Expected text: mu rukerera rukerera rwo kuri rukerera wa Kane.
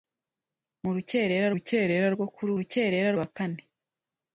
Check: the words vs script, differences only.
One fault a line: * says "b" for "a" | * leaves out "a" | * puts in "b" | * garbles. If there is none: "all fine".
all fine